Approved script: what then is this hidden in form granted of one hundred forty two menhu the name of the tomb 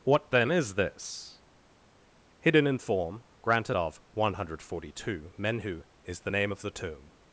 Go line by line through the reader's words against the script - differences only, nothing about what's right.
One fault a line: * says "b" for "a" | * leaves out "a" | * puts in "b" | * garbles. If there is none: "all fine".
* puts in "is"